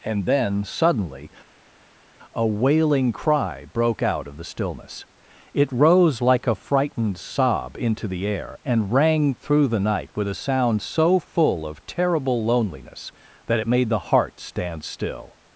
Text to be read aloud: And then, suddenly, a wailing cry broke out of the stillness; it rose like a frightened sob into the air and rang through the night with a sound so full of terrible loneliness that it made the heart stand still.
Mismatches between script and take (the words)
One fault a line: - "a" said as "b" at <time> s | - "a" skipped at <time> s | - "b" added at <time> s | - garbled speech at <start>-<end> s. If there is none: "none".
none